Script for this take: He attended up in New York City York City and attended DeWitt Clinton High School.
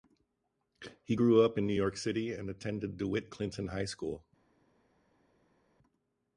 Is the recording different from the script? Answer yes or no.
yes